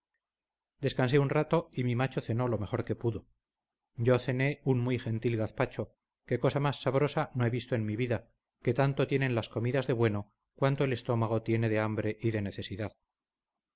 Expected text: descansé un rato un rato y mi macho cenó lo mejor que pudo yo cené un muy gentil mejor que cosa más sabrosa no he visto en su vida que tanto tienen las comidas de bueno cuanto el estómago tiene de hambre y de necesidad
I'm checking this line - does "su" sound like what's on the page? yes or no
no